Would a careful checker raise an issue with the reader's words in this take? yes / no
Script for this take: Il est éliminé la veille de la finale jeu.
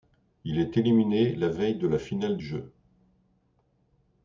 no